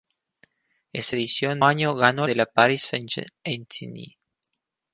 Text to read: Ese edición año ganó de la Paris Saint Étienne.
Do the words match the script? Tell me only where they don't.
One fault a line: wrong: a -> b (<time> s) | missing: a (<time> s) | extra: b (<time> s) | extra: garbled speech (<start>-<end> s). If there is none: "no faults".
no faults